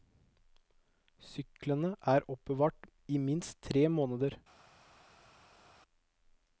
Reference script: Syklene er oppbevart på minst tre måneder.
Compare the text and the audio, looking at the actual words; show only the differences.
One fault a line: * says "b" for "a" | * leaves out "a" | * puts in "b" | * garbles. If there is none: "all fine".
* says "i" for "på"